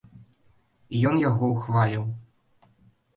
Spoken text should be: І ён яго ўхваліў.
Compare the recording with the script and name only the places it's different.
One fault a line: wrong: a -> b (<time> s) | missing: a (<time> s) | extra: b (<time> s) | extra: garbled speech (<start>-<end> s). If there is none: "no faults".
no faults